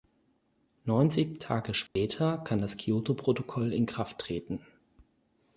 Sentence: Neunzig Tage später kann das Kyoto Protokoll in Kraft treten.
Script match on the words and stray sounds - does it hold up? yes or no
no